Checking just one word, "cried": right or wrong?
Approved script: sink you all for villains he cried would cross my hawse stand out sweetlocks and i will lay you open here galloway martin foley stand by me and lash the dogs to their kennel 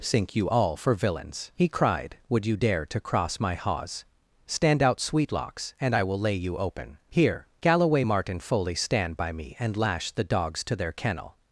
right